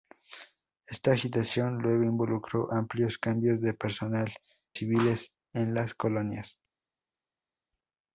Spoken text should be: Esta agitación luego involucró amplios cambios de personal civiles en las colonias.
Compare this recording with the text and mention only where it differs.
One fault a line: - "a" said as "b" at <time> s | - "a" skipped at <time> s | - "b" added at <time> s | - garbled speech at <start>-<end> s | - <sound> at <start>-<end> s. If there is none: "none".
none